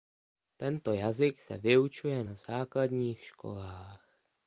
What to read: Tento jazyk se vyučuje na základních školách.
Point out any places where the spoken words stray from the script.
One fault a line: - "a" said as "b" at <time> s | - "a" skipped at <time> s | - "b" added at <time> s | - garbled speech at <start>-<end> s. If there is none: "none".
none